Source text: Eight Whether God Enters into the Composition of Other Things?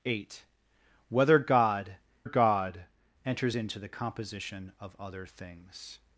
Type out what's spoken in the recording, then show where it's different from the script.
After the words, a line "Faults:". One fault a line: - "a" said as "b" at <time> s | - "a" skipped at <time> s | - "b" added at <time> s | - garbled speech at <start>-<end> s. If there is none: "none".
Eight Whether God God Enters into the Composition of Other Things?
Faults:
- "God" added at 2.2 s